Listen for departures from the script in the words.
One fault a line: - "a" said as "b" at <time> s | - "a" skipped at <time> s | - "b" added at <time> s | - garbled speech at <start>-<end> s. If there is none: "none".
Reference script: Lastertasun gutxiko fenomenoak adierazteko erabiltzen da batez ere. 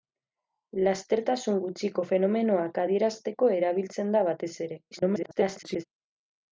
- garbled speech at 4.9-5.8 s